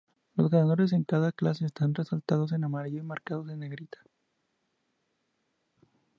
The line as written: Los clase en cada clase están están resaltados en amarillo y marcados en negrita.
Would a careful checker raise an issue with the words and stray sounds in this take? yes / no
yes